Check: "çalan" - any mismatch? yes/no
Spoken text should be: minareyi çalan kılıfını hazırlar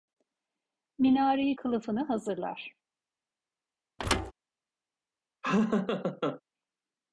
yes